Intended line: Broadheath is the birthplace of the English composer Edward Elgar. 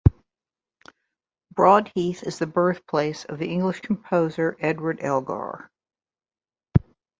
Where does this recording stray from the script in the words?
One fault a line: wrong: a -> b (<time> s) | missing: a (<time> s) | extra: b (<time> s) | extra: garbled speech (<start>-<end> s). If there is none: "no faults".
no faults